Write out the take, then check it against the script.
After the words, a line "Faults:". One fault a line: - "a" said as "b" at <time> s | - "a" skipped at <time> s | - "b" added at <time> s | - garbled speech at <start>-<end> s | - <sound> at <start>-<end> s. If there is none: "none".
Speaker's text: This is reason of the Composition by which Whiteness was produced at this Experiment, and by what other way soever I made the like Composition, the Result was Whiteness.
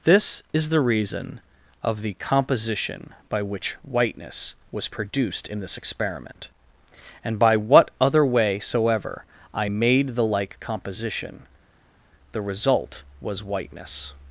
This is the reason of the Composition by which Whiteness was produced in this Experiment, and by what other way soever I made the like Composition, the Result was Whiteness.
Faults:
- "the" added at 0.7 s
- "at" said as "in" at 5.5 s